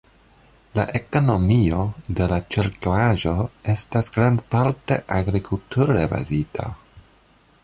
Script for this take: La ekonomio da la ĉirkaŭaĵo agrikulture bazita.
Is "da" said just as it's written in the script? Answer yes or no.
no